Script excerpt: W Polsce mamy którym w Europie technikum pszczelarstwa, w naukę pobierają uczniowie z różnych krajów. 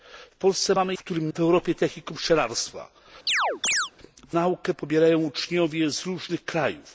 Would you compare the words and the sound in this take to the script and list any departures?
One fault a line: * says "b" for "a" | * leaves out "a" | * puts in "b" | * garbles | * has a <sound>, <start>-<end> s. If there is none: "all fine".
* has a chirp, 3.3-3.9 s